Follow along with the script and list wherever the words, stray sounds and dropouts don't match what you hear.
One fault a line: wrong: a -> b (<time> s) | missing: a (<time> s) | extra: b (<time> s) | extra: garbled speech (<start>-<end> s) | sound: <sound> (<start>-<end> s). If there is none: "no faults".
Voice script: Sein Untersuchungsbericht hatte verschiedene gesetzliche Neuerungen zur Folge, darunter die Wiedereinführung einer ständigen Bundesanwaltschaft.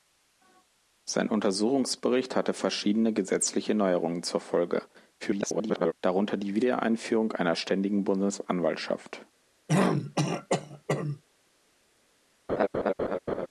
extra: garbled speech (5.2-5.9 s)
sound: throat clearing (9.7-11.2 s)
sound: laugh (12.5-13.5 s)